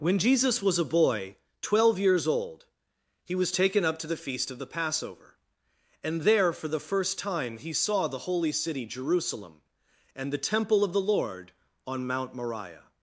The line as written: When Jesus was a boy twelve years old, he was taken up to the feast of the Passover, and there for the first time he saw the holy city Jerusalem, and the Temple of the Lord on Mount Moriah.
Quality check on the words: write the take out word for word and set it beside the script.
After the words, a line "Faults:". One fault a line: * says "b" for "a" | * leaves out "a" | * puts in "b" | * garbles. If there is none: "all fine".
When Jesus was a boy twelve years old, he was taken up to the feast of the Passover, and there for the first time he saw the holy city Jerusalem, and the Temple of the Lord on Mount Moriah.
Faults:
all fine